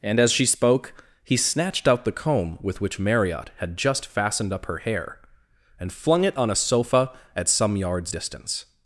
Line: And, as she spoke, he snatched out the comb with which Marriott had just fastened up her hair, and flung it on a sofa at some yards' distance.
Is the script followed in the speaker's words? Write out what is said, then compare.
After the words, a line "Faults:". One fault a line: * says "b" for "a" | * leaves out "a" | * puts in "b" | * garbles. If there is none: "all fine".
And, as she spoke, he snatched out the comb with which Marriott had just fastened up her hair, and flung it on a sofa at some yards' distance.
Faults:
all fine